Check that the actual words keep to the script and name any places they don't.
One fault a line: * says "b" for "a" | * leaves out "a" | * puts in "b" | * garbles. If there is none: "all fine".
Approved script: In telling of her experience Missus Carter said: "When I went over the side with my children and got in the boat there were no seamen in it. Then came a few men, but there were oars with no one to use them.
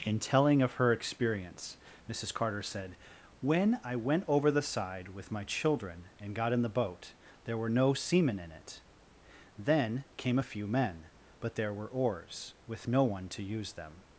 all fine